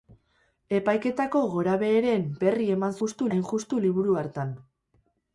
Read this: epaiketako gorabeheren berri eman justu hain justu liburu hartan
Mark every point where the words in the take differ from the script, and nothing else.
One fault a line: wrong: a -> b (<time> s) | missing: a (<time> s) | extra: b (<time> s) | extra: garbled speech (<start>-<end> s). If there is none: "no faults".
no faults